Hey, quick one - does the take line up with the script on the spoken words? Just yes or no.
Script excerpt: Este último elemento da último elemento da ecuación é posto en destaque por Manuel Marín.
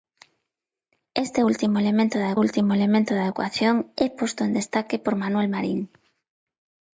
yes